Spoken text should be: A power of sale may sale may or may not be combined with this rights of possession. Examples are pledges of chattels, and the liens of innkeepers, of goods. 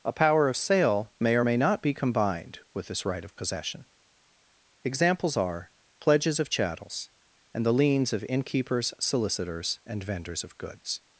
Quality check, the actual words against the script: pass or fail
fail